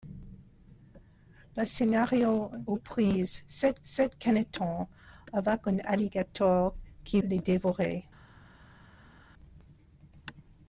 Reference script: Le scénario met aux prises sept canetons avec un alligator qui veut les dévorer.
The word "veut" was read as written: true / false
false